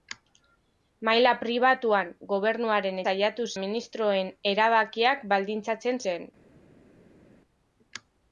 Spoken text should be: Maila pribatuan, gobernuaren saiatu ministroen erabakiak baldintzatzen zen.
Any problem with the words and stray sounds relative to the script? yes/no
no